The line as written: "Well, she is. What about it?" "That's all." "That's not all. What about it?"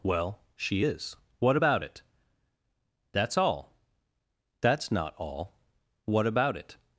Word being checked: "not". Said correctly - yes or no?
yes